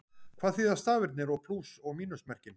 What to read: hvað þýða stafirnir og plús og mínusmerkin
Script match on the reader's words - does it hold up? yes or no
yes